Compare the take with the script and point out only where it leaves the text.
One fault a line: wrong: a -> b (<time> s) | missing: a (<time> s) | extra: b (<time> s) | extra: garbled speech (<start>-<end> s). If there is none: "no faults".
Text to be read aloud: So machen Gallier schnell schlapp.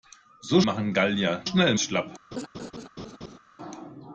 no faults